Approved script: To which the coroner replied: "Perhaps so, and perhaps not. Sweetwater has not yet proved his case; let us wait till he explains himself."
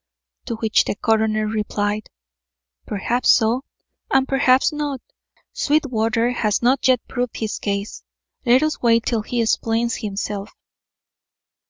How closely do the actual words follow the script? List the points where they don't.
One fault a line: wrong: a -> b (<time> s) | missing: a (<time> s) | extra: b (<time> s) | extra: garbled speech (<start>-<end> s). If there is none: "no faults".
no faults